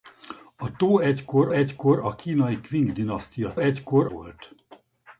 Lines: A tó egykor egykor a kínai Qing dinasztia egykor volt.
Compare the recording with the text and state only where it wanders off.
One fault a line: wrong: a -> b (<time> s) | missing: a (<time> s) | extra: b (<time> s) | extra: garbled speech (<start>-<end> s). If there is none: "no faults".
no faults